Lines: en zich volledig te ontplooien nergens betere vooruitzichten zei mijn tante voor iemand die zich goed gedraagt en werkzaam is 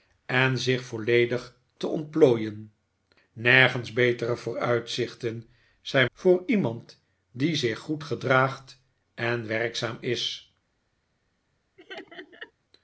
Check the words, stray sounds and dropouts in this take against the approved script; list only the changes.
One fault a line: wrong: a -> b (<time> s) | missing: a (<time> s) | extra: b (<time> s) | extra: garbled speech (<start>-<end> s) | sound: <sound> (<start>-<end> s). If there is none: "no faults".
missing: mijn tante (6.1 s)
sound: laugh (11.8-12.5 s)